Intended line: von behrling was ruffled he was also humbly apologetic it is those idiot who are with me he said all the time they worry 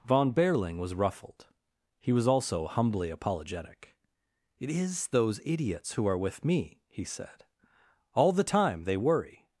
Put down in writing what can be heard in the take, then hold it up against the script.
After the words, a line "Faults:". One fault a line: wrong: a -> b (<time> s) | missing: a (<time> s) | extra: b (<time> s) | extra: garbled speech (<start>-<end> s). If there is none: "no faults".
von behrling was ruffled he was also humbly apologetic it is those idiots who are with me he said all the time they worry
Faults:
wrong: idiot -> idiots (5.5 s)